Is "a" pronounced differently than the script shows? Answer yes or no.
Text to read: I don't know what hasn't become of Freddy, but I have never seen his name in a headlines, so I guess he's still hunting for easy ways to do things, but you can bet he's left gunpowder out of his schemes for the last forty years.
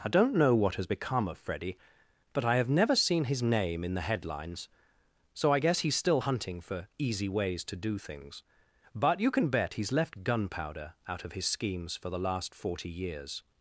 yes